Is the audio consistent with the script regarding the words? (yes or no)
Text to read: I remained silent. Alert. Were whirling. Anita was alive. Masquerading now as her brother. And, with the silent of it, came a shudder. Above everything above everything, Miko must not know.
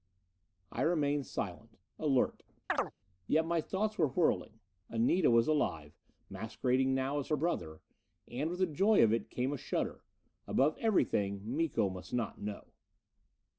no